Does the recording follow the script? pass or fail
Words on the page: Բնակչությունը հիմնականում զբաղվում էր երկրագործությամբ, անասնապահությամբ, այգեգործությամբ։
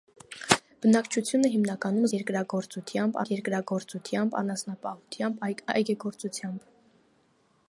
fail